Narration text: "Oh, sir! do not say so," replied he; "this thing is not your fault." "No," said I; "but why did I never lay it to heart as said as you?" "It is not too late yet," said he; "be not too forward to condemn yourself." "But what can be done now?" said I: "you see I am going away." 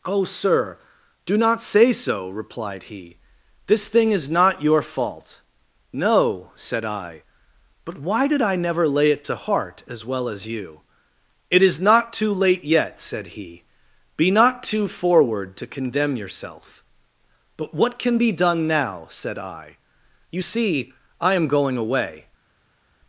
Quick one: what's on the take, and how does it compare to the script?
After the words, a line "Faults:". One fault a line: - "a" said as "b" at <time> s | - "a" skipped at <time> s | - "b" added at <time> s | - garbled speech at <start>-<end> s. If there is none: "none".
"Oh, sir! do not say so," replied he; "this thing is not your fault." "No," said I; "but why did I never lay it to heart as well as you?" "It is not too late yet," said he; "be not too forward to condemn yourself." "But what can be done now?" said I: "you see I am going away."
Faults:
- "said" said as "well" at 10.0 s